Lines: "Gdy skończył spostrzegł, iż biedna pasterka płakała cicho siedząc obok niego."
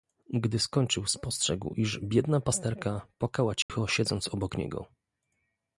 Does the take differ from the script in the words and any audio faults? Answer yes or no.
yes